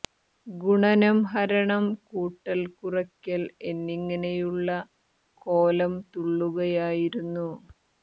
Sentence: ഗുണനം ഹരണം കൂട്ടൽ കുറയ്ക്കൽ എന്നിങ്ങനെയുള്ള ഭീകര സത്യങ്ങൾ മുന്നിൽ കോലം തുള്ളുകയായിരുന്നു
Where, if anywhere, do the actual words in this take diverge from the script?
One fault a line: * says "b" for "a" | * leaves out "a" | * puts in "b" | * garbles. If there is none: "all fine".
* leaves out "ഭീകര സത്യങ്ങൾ മുന്നിൽ"